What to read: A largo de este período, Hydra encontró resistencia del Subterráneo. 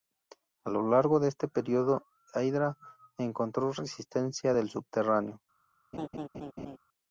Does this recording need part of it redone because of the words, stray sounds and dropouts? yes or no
yes